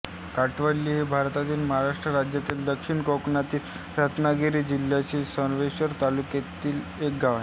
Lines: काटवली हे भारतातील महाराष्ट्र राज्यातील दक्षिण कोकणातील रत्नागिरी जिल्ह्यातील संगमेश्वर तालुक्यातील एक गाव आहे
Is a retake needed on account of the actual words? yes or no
no